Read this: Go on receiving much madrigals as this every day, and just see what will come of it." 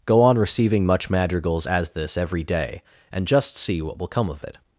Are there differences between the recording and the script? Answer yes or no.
no